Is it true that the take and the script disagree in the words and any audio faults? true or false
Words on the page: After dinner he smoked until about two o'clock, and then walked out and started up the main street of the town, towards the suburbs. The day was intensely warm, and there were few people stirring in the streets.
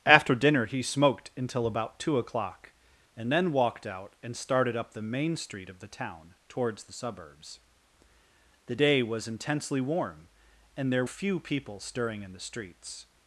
true